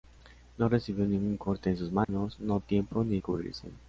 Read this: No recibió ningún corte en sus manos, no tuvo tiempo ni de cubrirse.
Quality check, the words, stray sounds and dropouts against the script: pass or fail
fail